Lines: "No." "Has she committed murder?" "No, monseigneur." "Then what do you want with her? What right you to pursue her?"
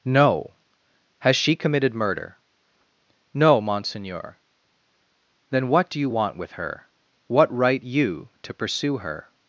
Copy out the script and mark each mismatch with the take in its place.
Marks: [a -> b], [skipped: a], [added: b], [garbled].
"No." "Has she committed murder?" "No, monseigneur." "Then what do you want with her? What right you to pursue her?"